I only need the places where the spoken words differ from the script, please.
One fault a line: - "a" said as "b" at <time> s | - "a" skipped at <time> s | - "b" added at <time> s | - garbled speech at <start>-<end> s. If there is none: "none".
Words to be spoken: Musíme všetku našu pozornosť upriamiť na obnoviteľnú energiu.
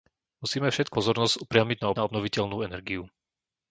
- "našu" skipped at 1.0 s
- "na" added at 1.9 s